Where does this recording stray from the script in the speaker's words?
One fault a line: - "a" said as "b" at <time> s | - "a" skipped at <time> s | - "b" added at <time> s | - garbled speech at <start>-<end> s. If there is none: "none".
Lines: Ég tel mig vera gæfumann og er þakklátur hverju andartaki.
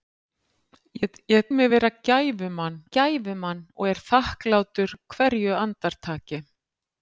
- "tel" skipped at 1.4 s
- "gæfumann" added at 3.0 s